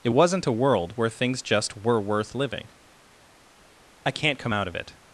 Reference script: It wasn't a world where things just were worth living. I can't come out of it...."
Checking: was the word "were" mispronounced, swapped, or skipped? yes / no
no